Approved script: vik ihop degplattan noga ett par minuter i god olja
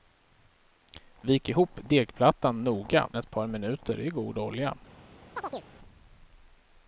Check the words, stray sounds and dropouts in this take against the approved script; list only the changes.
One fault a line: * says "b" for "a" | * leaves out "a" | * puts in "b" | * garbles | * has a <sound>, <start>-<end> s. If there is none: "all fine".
* has a chirp, 5.4-5.7 s